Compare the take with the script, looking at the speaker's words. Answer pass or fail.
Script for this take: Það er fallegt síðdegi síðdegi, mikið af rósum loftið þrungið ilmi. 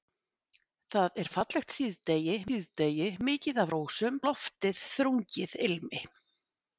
pass